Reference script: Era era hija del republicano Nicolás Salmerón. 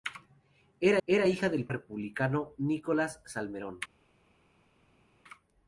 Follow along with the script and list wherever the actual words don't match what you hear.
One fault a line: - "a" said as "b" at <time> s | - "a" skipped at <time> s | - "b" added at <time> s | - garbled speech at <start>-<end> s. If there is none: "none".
none